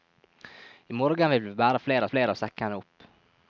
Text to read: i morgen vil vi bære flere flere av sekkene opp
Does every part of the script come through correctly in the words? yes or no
yes